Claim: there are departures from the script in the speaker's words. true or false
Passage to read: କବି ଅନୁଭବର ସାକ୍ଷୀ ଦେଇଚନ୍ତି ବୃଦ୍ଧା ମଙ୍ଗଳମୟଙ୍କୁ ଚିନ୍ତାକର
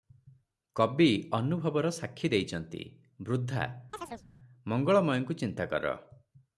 false